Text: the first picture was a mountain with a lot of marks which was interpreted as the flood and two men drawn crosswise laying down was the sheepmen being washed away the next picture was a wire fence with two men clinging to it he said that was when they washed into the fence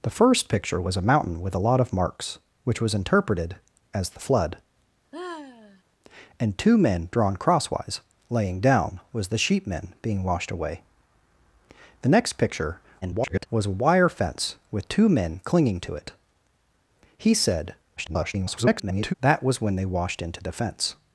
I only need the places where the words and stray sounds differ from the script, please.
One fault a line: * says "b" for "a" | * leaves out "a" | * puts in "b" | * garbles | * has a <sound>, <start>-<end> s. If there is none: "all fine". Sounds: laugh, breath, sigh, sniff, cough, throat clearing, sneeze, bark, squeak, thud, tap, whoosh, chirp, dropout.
* has a sigh, 5.1-5.8 s
* garbles
* garbles